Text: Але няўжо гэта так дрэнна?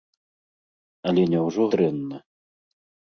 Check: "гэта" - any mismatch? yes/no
yes